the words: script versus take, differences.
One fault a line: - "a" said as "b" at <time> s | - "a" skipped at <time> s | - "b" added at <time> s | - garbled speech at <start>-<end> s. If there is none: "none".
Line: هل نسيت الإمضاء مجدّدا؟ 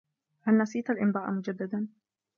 none